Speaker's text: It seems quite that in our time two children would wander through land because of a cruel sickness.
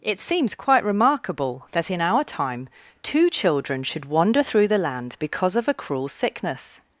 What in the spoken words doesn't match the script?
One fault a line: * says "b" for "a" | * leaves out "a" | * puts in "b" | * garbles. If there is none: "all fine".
* puts in "remarkable"
* says "should" for "would"
* puts in "the"